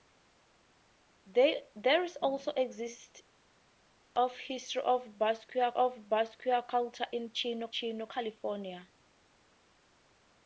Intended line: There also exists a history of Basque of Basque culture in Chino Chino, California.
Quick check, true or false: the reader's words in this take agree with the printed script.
true